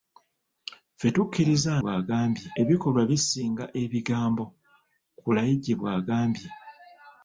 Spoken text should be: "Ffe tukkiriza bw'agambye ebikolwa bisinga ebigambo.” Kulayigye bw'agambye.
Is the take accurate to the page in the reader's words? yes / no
yes